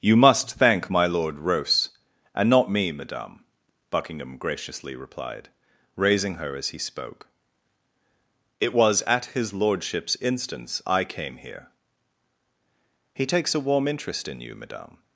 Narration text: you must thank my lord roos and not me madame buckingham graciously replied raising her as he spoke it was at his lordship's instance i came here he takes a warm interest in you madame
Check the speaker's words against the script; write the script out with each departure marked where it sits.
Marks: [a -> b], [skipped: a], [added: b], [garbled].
you must thank my lord roos and not me madame buckingham graciously replied raising her as he spoke it was at his lordship's instance i came here he takes a warm interest in you madame